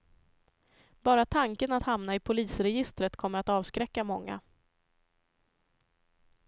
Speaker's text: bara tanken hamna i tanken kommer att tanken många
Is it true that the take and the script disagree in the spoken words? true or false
true